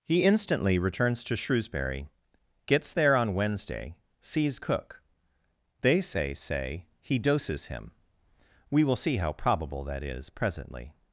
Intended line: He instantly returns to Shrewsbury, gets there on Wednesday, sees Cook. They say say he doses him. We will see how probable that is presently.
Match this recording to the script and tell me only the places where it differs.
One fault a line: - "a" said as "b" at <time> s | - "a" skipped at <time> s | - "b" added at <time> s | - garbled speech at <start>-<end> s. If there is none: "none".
none